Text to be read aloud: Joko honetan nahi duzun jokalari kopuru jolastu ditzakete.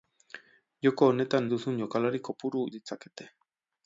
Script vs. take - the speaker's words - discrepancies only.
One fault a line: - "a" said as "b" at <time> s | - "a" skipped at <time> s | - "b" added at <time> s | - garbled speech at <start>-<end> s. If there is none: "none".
- "nahi" skipped at 1.5 s
- "jolastu" skipped at 2.6 s